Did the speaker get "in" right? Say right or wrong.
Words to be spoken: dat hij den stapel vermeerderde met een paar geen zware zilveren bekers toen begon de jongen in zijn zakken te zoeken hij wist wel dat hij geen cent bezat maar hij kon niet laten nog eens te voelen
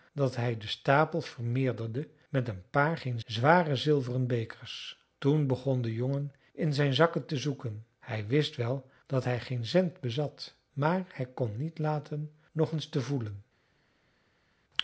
right